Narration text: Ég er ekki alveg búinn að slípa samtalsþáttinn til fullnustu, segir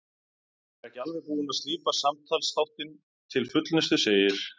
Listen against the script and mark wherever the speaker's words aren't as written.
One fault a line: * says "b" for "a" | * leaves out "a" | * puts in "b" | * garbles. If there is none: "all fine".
all fine